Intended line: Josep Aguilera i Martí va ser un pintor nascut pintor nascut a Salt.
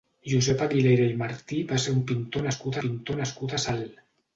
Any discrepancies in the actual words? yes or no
no